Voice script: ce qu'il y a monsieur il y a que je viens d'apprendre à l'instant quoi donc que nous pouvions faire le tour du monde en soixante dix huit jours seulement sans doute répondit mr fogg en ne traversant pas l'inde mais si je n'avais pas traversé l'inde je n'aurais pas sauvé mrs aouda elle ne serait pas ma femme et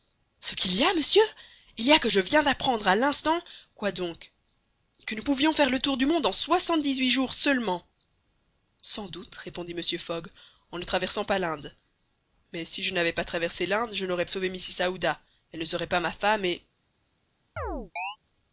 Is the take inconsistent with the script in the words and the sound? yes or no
yes